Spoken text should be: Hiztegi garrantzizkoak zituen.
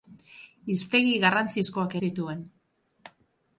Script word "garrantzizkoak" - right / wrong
right